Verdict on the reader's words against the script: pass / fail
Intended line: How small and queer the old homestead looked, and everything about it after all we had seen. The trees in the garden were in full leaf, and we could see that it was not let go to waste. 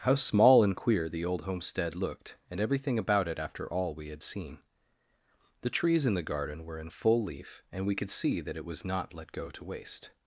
pass